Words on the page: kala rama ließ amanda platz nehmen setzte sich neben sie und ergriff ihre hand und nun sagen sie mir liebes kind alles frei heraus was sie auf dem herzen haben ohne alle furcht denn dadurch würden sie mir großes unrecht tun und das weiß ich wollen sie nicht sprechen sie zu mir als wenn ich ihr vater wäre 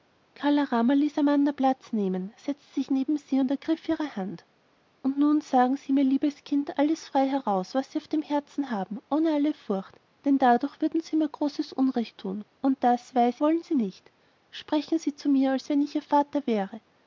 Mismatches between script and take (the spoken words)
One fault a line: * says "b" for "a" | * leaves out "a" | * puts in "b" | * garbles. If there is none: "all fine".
* leaves out "ich"